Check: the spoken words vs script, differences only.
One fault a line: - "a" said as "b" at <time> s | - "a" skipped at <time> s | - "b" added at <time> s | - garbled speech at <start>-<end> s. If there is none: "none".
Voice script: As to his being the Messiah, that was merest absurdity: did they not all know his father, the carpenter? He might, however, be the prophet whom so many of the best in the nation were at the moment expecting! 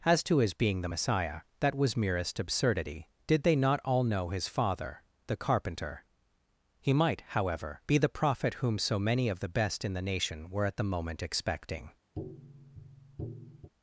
none